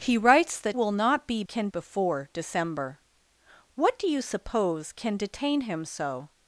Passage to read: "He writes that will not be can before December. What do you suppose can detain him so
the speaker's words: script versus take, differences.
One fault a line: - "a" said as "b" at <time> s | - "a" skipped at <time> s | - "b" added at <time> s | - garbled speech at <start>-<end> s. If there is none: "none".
none